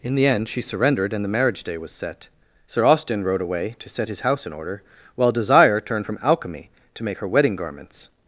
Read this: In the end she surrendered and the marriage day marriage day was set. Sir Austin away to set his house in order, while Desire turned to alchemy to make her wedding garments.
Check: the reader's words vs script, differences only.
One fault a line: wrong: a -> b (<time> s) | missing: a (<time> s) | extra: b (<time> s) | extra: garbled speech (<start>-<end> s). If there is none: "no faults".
missing: marriage day (1.8 s)
extra: rode (3.2 s)
wrong: to -> from (6.0 s)